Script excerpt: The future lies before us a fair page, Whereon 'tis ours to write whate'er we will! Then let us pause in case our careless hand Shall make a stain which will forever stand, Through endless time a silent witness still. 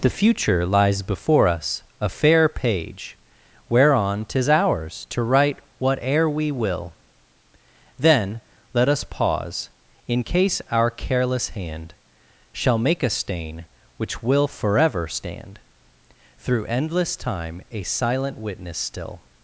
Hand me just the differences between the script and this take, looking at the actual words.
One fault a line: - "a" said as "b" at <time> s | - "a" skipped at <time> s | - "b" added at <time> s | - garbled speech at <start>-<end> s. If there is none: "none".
none